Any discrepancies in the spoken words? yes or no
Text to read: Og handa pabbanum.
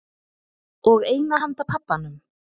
yes